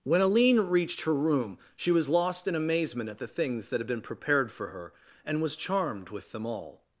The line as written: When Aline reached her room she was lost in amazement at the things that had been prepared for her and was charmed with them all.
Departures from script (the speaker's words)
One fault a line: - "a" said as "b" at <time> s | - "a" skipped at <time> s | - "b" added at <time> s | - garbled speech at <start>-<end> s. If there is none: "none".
none